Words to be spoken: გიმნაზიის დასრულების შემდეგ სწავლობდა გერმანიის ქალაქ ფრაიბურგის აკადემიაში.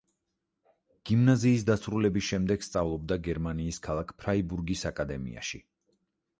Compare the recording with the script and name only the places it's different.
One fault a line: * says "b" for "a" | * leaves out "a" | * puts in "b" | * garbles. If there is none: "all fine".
all fine